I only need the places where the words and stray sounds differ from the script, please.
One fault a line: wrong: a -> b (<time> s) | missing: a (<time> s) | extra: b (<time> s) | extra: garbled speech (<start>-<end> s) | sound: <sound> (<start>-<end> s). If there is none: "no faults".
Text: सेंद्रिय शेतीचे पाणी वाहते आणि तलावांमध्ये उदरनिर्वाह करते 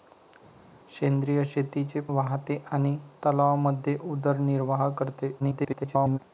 missing: पाणी (2.0 s)
extra: garbled speech (5.4-6.2 s)